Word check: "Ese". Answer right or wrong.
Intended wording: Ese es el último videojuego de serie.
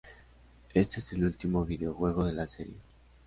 wrong